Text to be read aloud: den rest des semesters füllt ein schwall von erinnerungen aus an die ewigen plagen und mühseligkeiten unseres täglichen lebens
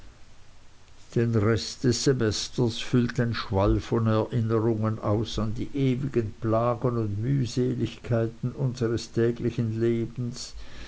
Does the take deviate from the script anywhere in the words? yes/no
no